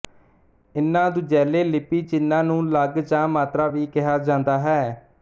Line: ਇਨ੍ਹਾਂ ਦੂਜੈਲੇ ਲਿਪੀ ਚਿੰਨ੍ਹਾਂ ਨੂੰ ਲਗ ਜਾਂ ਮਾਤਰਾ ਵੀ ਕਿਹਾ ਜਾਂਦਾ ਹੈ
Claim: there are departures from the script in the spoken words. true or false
false